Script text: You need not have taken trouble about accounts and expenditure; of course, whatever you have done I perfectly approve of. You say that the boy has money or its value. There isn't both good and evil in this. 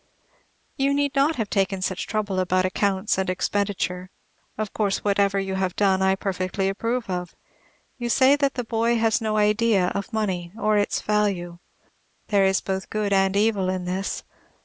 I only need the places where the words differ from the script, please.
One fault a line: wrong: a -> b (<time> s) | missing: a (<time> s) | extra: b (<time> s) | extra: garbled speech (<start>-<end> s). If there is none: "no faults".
extra: such (1.8 s)
extra: no idea of (9.2 s)
wrong: isn't -> is (12.4 s)